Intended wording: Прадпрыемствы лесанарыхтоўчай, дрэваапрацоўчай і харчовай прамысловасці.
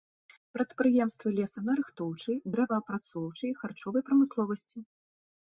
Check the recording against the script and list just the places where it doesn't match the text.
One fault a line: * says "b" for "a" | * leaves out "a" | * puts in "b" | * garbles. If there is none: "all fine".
all fine